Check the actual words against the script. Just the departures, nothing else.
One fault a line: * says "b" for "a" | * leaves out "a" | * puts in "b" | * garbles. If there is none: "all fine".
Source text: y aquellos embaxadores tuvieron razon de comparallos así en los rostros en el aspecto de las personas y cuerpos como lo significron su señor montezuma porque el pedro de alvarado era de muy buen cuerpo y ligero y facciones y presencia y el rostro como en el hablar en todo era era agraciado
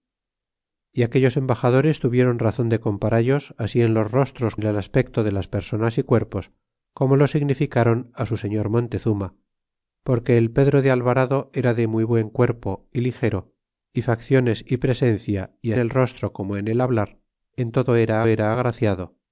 all fine